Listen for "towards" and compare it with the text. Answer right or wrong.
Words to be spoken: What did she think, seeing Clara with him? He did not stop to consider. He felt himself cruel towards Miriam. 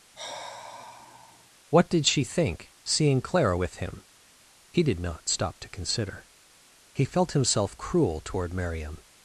wrong